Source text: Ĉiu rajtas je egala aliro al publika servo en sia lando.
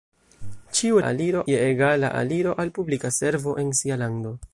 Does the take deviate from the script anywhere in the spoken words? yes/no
yes